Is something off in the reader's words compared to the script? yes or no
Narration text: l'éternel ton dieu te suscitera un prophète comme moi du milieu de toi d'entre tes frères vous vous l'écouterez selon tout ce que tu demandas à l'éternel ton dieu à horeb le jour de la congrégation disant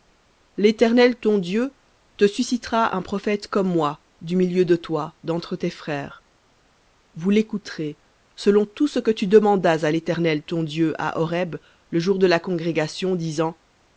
yes